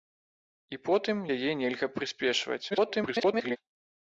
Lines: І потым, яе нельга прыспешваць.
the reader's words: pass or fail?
fail